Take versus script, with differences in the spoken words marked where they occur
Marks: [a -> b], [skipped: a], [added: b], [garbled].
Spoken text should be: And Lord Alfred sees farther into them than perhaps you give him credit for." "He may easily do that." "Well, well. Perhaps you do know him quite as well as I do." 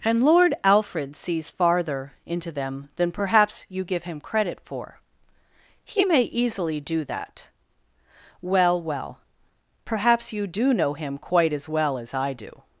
And Lord Alfred sees farther into them than perhaps you give him credit for." "He may easily do that." "Well, well. Perhaps you do know him quite as well as I do."